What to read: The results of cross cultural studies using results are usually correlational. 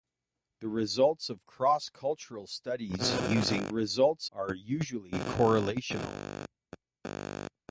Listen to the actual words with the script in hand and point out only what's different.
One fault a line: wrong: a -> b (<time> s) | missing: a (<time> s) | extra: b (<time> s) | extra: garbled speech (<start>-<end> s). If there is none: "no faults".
no faults